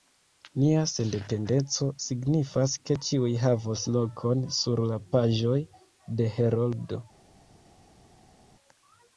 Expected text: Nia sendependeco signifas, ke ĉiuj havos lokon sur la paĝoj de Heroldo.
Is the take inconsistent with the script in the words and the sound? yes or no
no